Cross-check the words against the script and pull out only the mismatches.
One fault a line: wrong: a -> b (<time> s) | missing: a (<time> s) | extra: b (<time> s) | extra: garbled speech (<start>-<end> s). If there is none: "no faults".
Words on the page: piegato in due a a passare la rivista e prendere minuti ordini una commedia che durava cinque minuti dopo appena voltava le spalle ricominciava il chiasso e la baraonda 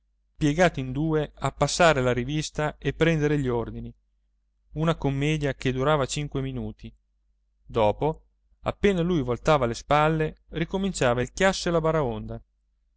missing: a (1.5 s)
wrong: minuti -> gli (3.4 s)
extra: lui (9.0 s)